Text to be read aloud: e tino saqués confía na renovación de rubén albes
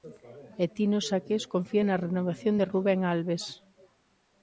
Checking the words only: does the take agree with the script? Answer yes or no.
yes